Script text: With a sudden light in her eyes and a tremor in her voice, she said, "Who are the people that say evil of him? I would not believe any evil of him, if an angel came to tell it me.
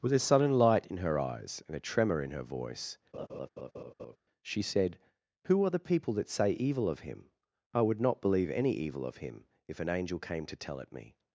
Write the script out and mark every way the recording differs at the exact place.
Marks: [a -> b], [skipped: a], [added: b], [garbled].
With a sudden light in her eyes and a tremor in her voice, she said, "Who are the people that say evil of him? I would not believe any evil of him, if an angel came to tell it me.